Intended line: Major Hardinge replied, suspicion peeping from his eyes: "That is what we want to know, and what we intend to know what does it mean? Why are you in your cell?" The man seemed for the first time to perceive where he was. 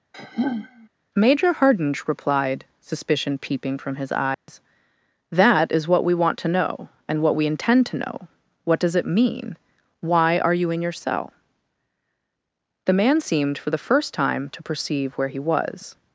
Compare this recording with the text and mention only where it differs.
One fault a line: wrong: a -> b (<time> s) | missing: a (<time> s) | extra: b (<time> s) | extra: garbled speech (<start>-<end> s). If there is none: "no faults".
no faults